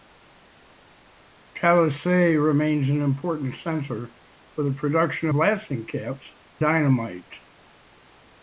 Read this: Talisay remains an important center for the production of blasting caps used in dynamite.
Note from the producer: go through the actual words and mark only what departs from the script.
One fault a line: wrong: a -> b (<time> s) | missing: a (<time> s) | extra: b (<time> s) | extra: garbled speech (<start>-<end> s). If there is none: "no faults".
missing: of (5.3 s)
missing: used in (6.3 s)